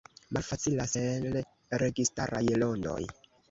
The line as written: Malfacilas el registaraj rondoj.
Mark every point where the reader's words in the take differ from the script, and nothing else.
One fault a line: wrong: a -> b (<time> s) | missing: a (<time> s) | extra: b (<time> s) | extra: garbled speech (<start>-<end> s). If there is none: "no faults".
no faults